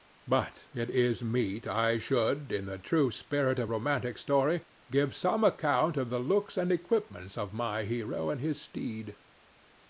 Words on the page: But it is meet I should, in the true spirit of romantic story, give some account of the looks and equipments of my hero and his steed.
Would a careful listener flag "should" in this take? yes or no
no